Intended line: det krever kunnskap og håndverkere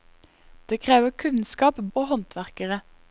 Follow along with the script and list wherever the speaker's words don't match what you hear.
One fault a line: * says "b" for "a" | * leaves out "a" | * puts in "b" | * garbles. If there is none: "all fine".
all fine